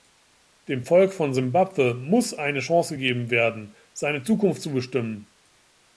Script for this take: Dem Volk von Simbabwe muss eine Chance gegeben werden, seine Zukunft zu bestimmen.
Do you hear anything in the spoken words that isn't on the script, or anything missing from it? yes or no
no